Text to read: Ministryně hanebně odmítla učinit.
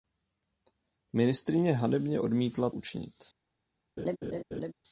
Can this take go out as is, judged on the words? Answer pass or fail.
pass